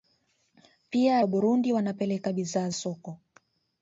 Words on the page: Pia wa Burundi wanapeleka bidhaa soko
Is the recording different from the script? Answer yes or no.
no